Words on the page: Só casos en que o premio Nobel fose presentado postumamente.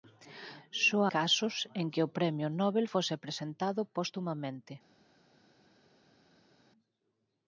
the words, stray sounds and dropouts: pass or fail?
pass